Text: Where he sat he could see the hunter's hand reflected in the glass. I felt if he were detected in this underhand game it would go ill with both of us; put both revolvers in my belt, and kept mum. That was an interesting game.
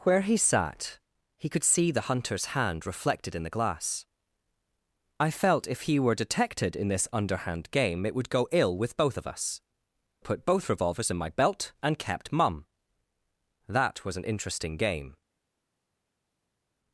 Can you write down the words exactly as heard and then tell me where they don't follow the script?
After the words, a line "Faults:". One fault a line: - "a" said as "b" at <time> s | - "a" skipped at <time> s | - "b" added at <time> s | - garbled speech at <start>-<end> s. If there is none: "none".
Where he sat he could see the hunter's hand reflected in the glass. I felt if he were detected in this underhand game it would go ill with both of us; put both revolvers in my belt, and kept mum. That was an interesting game.
Faults:
none